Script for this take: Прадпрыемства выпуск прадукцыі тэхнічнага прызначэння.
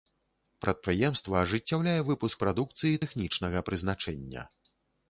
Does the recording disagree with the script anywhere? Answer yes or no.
yes